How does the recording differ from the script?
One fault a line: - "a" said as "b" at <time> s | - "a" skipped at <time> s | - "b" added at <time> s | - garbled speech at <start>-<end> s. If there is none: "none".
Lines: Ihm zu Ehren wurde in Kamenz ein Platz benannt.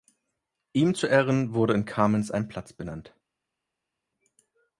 none